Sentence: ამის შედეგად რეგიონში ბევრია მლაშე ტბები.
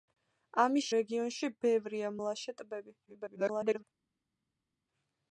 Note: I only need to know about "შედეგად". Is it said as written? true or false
false